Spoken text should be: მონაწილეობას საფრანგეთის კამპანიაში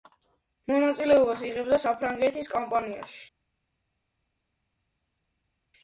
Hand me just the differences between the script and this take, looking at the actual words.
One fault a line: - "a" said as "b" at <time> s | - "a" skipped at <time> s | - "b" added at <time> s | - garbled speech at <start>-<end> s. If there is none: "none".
- "იღებდა" added at 1.5 s